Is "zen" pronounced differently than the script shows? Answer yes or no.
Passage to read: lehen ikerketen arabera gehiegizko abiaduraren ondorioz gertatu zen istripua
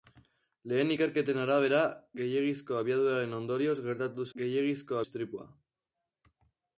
yes